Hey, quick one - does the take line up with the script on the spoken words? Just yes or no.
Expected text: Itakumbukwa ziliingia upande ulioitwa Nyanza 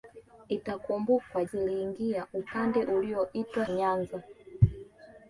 yes